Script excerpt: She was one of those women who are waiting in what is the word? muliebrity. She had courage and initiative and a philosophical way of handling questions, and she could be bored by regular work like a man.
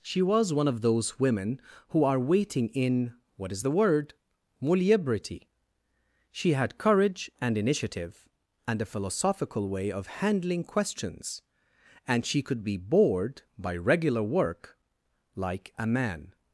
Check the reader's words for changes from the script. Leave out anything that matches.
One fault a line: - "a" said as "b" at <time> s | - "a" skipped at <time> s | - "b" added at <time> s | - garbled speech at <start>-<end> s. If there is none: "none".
none